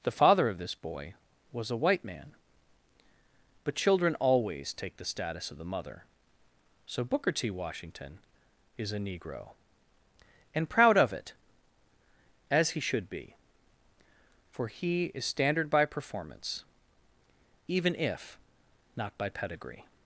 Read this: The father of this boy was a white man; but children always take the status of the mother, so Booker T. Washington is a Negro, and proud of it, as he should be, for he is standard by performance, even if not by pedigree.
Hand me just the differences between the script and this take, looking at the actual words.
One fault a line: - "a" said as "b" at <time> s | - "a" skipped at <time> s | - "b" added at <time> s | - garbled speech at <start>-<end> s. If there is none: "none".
none